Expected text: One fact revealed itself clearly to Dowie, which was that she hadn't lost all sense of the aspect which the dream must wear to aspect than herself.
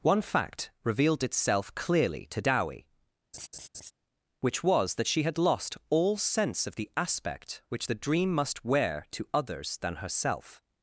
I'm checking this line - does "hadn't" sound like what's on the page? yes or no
no